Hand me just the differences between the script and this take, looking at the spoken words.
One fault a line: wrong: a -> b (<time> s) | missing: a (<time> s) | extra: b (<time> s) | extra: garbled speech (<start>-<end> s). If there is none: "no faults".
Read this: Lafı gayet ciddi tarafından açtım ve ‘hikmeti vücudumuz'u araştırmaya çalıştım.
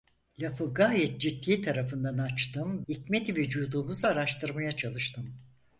missing: ve (2.9 s)